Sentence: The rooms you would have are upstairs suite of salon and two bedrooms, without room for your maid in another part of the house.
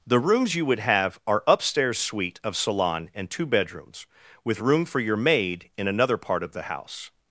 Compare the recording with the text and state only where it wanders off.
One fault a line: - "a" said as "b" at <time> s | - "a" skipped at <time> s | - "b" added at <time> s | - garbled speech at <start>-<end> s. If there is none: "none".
- "without" said as "with" at 4.4 s